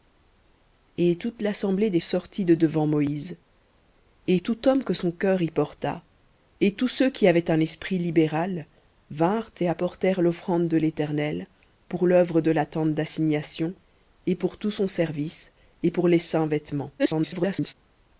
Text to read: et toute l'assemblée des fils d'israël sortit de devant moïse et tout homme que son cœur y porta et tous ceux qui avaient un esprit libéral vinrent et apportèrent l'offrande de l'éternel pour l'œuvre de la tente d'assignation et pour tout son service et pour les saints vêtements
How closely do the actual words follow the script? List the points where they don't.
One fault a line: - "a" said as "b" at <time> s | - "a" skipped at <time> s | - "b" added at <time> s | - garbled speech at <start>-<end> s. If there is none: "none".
- "fils d'israël" skipped at 2.0 s
- garbled speech at 17.0-17.7 s